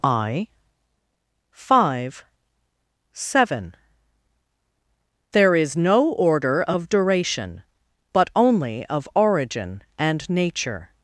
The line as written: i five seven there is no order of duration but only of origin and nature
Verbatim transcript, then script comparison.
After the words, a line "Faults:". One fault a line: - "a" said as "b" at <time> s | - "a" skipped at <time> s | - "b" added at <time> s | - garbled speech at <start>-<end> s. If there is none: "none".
i five seven there is no order of duration but only of origin and nature
Faults:
none